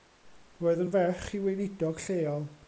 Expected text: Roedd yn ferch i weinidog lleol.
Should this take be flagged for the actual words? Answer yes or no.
no